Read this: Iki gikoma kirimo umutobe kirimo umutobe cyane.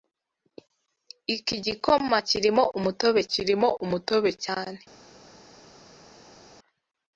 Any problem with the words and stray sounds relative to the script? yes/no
no